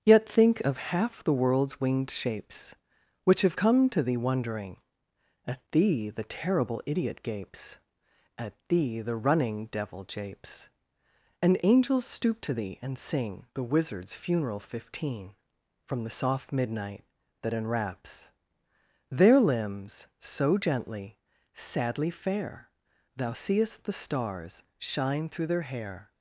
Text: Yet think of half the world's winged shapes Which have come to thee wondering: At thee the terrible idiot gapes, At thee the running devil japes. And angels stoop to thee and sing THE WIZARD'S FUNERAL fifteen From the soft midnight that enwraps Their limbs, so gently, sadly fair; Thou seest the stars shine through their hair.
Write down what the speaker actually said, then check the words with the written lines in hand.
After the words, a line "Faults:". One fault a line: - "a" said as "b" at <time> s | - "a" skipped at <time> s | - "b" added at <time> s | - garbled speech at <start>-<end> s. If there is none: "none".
Yet think of half the world's winged shapes Which have come to thee wondering: At thee the terrible idiot gapes, At thee the running devil japes. And angels stoop to thee and sing THE WIZARD'S FUNERAL fifteen From the soft midnight that enwraps Their limbs, so gently, sadly fair; Thou seest the stars shine through their hair.
Faults:
none